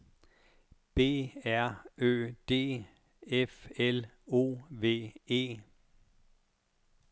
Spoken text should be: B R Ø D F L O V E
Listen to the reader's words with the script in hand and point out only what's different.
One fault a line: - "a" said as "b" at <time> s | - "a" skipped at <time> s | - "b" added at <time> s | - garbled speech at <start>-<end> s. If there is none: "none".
none